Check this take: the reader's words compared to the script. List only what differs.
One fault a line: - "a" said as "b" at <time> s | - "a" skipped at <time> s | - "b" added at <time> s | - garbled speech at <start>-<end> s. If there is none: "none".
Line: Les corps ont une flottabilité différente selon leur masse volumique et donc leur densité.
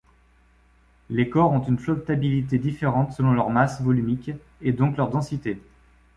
none